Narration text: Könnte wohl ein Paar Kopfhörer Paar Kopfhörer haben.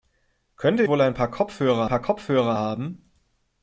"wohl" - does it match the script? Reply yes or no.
yes